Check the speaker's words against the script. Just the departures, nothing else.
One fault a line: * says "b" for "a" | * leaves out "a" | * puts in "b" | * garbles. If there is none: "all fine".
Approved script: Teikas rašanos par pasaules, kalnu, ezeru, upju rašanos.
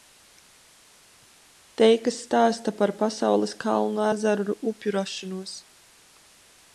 * says "stāsta" for "rašanos"